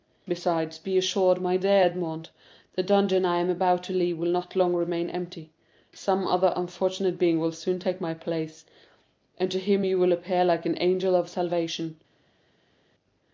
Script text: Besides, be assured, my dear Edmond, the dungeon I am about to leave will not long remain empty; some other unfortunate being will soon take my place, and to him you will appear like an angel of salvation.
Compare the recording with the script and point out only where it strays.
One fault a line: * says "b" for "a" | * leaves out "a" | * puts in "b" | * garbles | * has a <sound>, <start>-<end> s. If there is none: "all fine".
all fine